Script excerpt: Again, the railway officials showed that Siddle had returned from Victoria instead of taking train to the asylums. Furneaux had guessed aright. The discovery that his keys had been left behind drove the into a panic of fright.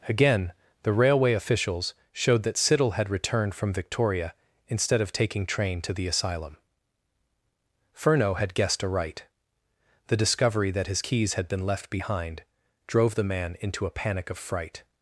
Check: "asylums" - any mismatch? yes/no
yes